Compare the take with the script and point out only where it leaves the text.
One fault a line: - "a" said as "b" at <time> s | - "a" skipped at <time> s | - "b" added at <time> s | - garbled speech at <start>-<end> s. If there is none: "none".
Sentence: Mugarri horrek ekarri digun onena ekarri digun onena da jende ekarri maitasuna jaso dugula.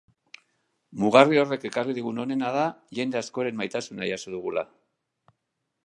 - "ekarri digun onena" skipped at 2.5 s
- "ekarri" said as "askoren" at 3.2 s